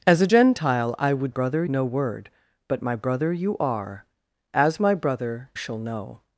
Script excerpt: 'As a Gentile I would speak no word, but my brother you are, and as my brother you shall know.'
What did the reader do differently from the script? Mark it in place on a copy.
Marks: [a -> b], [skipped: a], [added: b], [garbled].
'As a Gentile I would [speak -> brother] no word, but my brother you are, [skipped: and] as my brother [skipped: you] shall know.'